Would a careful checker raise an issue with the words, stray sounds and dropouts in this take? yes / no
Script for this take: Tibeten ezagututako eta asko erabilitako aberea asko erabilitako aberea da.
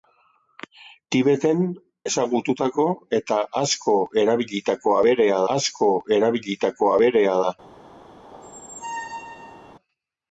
yes